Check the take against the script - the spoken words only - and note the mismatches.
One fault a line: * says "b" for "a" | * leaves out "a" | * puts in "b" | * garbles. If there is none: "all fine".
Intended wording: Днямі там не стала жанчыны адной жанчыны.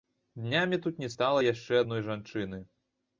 * says "тут" for "там"
* says "яшчэ" for "жанчыны"